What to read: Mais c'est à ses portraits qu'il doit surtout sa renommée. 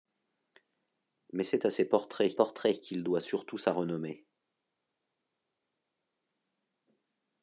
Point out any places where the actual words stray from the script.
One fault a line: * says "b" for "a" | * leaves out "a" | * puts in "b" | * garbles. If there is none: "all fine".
* puts in "portraits"